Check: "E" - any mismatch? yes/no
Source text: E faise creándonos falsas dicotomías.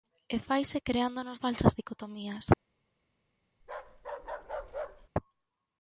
no